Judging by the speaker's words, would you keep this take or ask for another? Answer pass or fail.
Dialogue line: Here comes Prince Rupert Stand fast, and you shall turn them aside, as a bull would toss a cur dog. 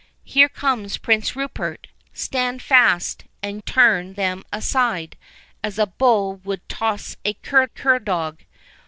fail